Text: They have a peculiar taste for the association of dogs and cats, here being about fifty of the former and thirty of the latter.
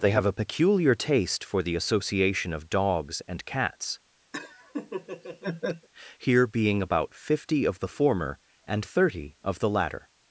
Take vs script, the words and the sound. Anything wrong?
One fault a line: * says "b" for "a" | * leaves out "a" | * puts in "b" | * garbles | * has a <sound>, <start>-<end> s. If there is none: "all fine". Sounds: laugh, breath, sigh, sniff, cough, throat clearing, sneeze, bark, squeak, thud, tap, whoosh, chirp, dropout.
* has a laugh, 4.3-5.9 s